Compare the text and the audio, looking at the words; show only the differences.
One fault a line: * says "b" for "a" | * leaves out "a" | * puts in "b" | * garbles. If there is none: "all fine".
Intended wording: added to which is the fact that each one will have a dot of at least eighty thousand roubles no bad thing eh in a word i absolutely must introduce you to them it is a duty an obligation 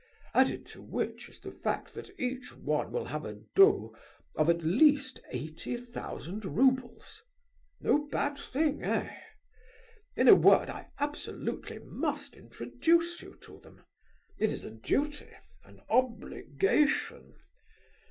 all fine